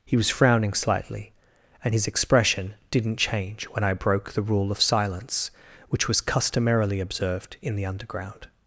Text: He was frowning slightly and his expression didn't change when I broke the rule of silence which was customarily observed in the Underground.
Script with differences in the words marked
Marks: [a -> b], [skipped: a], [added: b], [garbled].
He was frowning slightly and his expression didn't change when I broke the rule of silence which was customarily observed in the Underground.